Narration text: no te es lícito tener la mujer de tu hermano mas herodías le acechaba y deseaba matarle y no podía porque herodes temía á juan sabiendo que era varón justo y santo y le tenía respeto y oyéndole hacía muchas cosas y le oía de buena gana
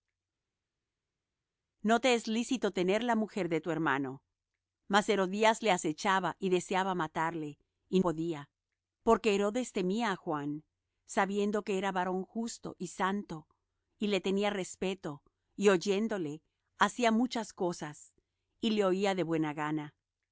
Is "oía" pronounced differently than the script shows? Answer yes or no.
no